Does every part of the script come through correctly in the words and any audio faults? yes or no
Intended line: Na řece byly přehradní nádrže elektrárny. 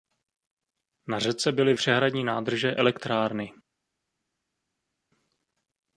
yes